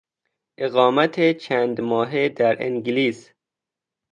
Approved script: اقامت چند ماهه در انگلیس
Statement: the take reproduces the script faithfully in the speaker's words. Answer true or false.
true